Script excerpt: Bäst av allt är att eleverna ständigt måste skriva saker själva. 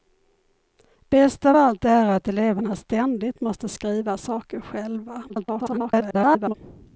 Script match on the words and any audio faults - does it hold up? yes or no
no